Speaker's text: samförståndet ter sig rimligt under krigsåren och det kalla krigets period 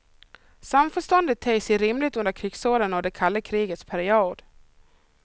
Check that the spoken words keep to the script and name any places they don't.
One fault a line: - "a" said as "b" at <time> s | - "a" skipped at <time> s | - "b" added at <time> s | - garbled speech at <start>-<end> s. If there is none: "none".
none